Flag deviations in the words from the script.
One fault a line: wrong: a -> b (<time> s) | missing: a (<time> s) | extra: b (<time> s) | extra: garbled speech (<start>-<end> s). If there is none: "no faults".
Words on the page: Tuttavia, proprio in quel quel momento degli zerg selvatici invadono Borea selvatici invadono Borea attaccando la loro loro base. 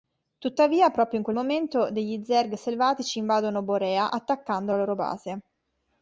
missing: quel (1.4 s)
missing: selvatici invadono Borea (4.1 s)
missing: loro (4.9 s)